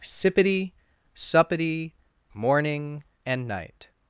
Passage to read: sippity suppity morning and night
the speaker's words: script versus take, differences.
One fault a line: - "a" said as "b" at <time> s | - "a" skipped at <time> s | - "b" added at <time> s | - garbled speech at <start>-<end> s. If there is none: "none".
none